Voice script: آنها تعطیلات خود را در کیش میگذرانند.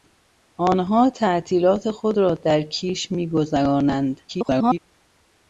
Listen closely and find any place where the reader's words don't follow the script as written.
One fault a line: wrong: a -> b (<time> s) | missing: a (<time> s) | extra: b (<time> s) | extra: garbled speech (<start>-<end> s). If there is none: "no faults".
extra: garbled speech (4.3-4.8 s)